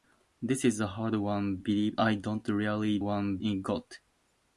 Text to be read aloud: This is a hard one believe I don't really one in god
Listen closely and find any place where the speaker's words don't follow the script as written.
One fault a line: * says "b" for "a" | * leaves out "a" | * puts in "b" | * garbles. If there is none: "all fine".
all fine